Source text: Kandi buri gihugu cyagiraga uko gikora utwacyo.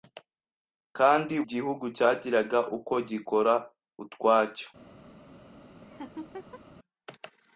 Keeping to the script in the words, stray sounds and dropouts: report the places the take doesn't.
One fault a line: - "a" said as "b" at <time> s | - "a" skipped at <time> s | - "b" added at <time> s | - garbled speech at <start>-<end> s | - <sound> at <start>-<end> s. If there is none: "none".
- "buri" skipped at 1.4 s
- laugh at 5.8-6.6 s